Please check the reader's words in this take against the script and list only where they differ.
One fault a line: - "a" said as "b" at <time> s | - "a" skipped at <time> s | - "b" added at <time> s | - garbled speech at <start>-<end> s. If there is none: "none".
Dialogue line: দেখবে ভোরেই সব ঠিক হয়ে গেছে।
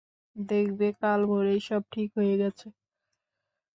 - "কাল" added at 1.0 s